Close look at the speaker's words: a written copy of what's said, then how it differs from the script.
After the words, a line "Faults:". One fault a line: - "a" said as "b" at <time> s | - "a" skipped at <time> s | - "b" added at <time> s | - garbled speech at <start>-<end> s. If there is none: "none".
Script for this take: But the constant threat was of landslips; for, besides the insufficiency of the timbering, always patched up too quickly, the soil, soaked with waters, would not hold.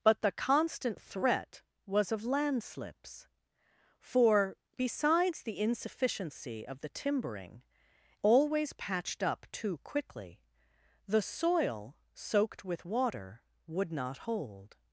But the constant threat was of landslips; for, besides the insufficiency of the timbering, always patched up too quickly, the soil, soaked with water, would not hold.
Faults:
- "waters" said as "water" at 12.8 s